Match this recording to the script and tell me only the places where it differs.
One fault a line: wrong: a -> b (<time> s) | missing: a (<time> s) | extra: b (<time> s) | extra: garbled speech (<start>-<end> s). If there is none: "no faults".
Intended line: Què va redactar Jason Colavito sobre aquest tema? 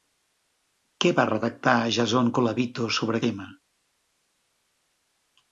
missing: aquest (3.2 s)